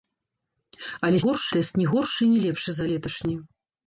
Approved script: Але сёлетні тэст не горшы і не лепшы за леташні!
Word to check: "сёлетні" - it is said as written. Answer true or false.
false